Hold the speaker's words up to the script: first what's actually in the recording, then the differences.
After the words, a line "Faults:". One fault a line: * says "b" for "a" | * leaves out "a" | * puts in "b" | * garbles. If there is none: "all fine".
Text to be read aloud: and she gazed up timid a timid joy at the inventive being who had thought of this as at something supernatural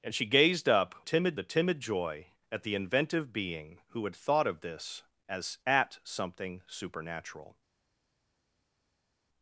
and she gazed up timid a timid joy at the inventive being who had thought of this as at something supernatural
Faults:
all fine